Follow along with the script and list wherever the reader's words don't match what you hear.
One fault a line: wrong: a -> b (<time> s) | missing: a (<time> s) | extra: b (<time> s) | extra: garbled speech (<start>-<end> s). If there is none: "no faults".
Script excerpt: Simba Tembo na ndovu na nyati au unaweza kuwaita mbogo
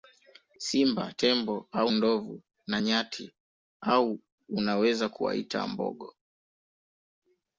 wrong: na -> au (1.7 s)